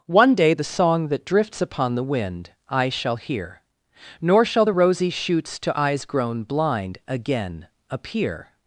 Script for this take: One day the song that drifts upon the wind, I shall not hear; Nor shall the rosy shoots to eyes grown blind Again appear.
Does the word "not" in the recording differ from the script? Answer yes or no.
yes